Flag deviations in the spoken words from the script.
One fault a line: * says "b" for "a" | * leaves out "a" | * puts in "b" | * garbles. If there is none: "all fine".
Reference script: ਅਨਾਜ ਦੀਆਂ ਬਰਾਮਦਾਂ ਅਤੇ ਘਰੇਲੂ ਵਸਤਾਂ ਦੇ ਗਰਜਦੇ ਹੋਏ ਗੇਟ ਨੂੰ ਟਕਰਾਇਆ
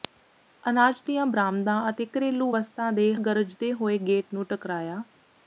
all fine